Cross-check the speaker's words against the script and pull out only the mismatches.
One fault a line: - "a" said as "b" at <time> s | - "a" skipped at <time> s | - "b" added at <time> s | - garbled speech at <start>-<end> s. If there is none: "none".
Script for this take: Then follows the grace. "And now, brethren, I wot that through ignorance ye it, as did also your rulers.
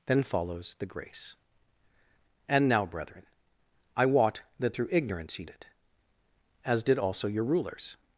none